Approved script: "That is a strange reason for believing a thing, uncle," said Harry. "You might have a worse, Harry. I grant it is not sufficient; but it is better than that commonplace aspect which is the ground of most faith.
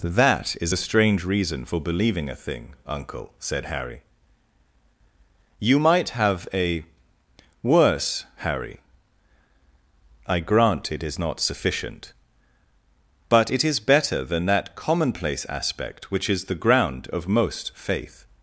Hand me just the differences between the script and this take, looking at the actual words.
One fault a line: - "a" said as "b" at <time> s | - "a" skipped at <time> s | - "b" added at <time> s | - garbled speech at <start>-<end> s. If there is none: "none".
none